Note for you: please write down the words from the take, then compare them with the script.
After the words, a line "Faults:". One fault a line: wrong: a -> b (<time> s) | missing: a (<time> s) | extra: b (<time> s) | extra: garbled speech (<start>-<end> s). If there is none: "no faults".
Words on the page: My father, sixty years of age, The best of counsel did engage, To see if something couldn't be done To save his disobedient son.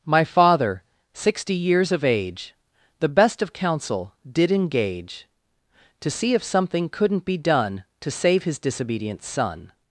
My father, sixty years of age, The best of counsel did engage, To see if something couldn't be done To save his disobedient son.
Faults:
no faults